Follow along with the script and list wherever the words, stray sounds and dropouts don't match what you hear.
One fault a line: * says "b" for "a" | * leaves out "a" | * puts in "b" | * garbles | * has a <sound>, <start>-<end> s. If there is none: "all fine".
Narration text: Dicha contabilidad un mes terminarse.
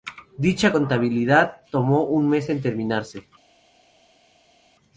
* puts in "tomó"
* puts in "en"